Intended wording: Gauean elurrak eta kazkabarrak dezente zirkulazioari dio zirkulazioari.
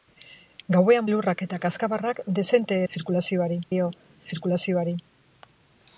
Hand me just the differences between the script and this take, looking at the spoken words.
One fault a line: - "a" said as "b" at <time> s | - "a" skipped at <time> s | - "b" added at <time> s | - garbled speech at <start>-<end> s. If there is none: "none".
none